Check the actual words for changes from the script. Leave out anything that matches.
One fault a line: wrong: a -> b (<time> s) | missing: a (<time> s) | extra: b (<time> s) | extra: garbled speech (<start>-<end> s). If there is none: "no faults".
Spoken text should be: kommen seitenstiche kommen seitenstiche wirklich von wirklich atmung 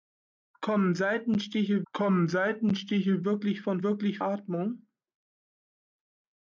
no faults